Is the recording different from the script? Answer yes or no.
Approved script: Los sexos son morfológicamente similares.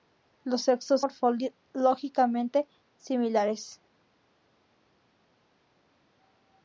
yes